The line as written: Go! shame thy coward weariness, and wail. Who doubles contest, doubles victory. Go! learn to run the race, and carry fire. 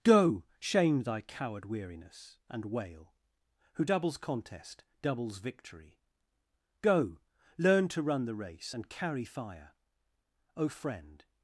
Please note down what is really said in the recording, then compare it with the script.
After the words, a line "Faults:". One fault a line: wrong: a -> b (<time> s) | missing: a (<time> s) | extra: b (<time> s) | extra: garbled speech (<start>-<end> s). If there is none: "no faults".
Go! shame thy coward weariness, and wail. Who doubles contest, doubles victory. Go! learn to run the race, and carry fire. O Friend
Faults:
extra: O Friend (10.6 s)